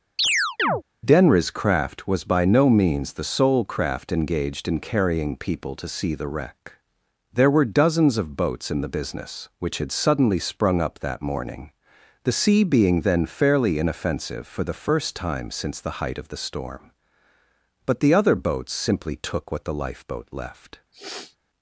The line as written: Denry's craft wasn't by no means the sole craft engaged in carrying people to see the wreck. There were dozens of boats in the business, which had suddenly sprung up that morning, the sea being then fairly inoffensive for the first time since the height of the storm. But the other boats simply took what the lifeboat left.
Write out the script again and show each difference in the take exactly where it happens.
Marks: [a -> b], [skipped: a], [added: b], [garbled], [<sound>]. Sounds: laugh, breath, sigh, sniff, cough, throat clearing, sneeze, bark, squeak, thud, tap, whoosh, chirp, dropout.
[chirp] Denry's craft [wasn't -> was] by no means the sole craft engaged in carrying people to see the wreck. There were dozens of boats in the business, which had suddenly sprung up that morning, the sea being then fairly inoffensive for the first time since the height of the storm. But the other boats simply took what the lifeboat left. [sniff]